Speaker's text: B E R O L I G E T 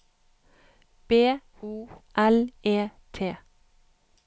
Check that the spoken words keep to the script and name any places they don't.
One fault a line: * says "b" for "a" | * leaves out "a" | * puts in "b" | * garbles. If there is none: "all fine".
* leaves out "E R"
* leaves out "I G"